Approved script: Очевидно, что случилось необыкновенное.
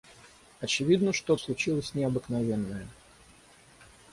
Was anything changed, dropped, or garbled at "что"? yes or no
no